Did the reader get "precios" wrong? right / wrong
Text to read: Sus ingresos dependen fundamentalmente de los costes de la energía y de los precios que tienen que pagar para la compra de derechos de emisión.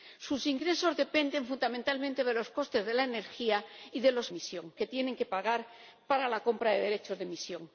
wrong